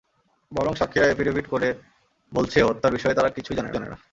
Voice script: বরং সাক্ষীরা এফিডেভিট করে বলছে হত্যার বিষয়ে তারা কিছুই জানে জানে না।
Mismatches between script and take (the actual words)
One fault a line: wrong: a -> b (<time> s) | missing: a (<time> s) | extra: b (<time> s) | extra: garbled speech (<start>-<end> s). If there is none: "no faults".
no faults